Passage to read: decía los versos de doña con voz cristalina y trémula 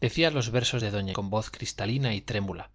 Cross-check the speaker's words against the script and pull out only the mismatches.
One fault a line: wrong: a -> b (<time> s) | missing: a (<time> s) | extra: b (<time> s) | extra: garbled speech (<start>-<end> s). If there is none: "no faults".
no faults